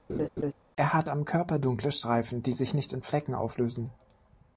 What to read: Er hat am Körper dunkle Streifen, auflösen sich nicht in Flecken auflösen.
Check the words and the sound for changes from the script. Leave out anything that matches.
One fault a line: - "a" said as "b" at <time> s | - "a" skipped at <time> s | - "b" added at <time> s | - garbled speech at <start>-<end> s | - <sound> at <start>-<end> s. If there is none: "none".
- laugh at 0.1-0.5 s
- "auflösen" said as "die" at 2.4 s